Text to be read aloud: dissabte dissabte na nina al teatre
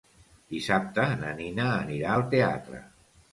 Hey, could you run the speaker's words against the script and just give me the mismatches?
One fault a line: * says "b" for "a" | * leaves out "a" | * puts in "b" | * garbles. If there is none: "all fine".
* leaves out "dissabte"
* puts in "anirà"